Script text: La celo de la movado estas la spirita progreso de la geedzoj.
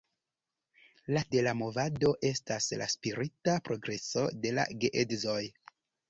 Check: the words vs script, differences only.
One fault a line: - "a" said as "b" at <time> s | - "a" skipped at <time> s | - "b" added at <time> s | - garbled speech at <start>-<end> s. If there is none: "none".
- "celo" skipped at 1.2 s